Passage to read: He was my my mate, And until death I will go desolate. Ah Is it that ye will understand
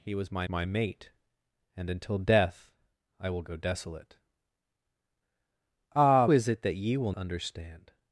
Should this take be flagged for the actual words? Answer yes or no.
no